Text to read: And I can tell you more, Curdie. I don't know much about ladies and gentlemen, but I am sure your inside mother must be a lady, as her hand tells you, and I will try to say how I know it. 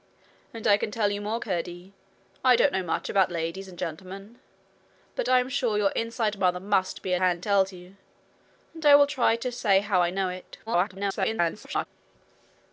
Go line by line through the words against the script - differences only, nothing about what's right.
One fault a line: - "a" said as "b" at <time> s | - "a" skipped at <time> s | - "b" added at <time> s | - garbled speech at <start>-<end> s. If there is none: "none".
- "lady as her" skipped at 7.2 s
- garbled speech at 10.7-11.9 s